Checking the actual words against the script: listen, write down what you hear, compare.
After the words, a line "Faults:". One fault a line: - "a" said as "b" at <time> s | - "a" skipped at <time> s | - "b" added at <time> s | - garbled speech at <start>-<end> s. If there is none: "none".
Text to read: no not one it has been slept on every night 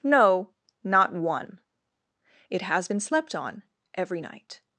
no not one it has been slept on every night
Faults:
none